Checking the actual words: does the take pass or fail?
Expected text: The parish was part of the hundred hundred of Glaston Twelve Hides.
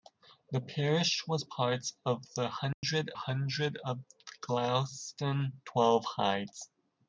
pass